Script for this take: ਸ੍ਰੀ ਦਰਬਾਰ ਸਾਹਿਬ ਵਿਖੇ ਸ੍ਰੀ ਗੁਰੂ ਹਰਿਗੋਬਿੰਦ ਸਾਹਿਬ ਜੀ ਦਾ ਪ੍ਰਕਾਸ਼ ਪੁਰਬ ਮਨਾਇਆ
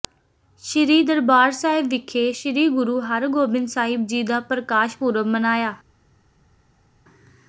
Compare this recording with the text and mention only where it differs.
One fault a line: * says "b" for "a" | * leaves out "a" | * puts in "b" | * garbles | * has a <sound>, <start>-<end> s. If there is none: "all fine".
all fine